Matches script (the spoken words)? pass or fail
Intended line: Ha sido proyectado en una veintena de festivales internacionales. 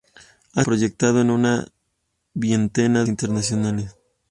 fail